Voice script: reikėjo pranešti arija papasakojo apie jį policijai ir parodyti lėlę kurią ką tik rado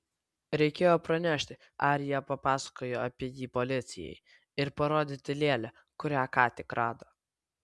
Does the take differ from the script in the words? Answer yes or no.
no